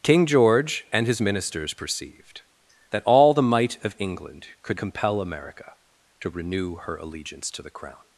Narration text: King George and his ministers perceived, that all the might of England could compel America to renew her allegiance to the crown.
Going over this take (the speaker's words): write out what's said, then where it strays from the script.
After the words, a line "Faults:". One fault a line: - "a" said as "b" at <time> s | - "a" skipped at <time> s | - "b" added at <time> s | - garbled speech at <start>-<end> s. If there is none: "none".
King George and his ministers perceived, that all the might of England could compel America to renew her allegiance to the crown.
Faults:
none